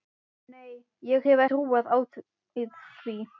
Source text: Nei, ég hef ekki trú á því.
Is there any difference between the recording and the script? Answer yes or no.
yes